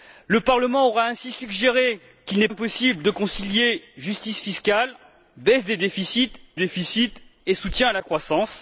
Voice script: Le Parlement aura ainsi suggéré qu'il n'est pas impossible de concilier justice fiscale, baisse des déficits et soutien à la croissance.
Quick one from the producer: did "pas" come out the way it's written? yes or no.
no